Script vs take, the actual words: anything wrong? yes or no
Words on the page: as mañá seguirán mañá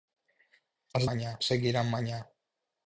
no